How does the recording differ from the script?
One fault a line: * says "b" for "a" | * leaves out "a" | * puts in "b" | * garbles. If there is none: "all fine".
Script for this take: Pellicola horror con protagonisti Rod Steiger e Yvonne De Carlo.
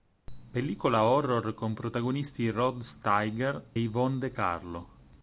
* leaves out "e"